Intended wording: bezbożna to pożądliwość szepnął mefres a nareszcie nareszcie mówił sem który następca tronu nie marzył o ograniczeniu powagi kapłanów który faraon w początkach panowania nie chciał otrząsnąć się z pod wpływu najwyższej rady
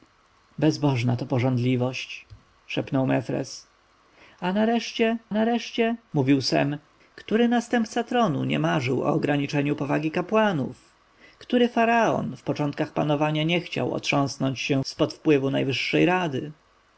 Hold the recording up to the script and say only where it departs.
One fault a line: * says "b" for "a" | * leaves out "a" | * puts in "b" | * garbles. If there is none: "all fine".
all fine